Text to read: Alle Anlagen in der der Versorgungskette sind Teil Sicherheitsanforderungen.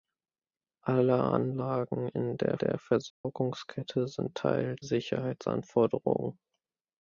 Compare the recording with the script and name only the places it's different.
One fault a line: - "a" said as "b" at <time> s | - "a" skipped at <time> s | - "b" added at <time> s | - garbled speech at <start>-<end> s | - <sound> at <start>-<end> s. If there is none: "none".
- dropout at 3.1-3.2 s